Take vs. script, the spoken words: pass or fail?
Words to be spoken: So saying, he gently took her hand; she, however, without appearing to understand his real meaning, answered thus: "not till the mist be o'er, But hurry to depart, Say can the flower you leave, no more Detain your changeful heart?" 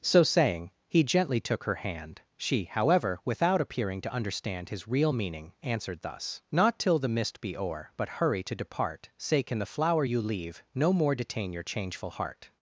pass